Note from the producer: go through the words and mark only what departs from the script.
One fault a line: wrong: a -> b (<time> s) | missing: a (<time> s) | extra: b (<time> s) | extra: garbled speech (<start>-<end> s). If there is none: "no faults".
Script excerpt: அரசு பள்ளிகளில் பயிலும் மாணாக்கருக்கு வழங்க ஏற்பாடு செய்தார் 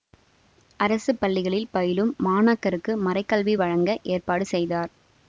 extra: மறைகல்வி (3.0 s)